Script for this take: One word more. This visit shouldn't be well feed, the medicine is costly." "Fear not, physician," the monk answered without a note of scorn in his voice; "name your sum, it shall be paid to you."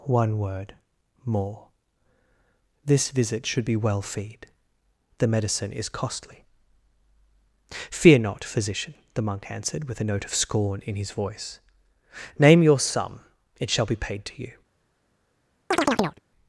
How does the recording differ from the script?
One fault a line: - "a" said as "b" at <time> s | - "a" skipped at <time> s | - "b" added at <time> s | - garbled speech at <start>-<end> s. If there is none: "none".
- "shouldn't" said as "should" at 3.5 s
- "without" said as "with" at 9.9 s